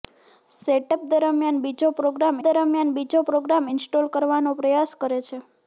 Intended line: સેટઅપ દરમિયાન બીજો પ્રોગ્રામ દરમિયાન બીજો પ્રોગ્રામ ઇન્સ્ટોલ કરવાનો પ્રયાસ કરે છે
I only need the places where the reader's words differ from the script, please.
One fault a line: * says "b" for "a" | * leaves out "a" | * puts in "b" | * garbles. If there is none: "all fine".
all fine